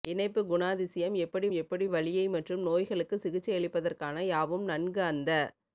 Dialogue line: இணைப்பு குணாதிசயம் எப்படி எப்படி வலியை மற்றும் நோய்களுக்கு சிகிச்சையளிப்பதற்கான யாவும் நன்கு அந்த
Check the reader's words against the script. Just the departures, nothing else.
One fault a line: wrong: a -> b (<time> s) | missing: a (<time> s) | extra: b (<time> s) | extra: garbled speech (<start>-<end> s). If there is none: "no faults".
no faults